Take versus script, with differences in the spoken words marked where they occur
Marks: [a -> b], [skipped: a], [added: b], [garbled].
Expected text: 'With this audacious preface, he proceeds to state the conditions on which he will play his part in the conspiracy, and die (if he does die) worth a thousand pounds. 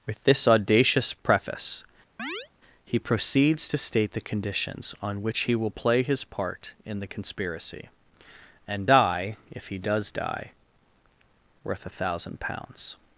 'With this audacious preface, he proceeds to state the conditions on which he will play his part in the conspiracy, and die (if he does die) worth a thousand pounds.